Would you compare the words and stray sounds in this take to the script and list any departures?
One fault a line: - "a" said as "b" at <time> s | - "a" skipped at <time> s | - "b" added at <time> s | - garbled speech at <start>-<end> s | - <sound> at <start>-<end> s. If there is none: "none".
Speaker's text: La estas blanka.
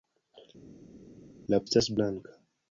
none